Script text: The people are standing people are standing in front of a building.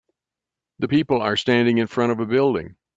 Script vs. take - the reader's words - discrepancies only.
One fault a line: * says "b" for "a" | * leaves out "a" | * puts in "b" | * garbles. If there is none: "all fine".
* leaves out "people are standing"